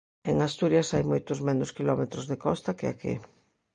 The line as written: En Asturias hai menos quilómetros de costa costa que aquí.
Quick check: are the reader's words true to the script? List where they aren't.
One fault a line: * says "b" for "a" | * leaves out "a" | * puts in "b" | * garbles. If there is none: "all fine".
* puts in "moitos"
* leaves out "costa"